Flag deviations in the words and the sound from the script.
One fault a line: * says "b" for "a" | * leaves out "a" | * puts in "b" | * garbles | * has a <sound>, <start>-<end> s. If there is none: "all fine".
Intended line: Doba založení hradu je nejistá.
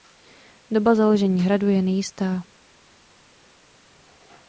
all fine